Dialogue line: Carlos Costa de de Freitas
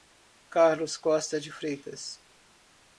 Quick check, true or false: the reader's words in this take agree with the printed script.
false